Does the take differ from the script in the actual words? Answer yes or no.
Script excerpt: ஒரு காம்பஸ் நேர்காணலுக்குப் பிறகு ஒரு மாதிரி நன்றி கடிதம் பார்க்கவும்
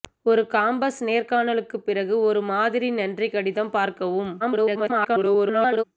yes